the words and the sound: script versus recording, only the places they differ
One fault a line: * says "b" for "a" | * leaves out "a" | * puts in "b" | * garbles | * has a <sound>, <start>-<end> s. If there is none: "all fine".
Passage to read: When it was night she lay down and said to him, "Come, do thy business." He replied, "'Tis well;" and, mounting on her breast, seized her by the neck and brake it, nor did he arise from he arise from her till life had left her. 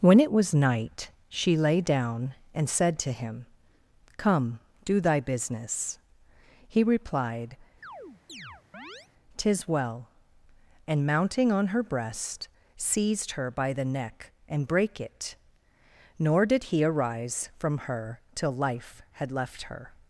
* has a chirp, 7.8-9.1 s
* leaves out "he arise from"